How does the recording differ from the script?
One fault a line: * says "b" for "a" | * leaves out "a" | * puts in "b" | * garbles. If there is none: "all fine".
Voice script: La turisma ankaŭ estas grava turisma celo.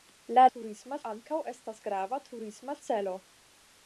all fine